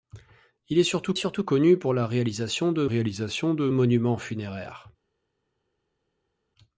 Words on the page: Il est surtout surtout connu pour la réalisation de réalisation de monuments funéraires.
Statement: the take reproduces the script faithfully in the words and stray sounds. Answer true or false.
true